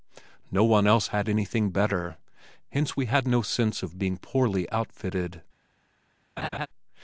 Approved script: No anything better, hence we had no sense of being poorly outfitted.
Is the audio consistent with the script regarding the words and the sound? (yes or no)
no